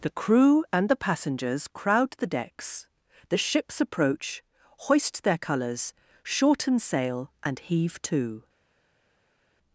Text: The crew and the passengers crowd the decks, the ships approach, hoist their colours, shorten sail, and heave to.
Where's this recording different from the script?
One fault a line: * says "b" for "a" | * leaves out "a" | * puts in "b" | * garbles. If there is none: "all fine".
all fine